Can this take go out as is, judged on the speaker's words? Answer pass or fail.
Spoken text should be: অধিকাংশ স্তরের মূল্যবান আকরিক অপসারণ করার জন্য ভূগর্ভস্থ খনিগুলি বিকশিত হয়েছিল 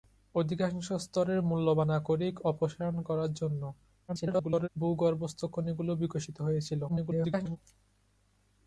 fail